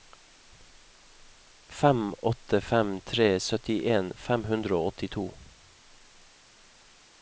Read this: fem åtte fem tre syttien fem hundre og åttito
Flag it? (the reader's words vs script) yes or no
no